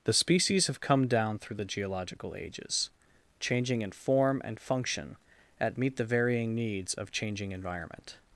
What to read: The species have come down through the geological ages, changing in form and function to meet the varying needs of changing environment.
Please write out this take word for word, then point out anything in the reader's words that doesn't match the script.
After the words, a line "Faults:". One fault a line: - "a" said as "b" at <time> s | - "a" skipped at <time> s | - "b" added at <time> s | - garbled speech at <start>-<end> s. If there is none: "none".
The species have come down through the geological ages, changing in form and function at meet the varying needs of changing environment.
Faults:
- "to" said as "at" at 5.6 s